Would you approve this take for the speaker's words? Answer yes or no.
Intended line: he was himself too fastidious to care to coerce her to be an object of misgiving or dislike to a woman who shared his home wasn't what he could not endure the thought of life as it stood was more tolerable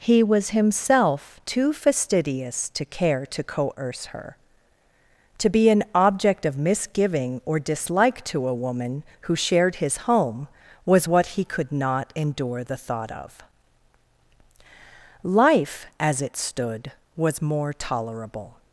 no